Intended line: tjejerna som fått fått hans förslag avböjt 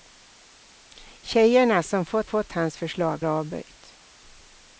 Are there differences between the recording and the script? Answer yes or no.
no